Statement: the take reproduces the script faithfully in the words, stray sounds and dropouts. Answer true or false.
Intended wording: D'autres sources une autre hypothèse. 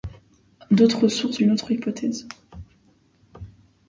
true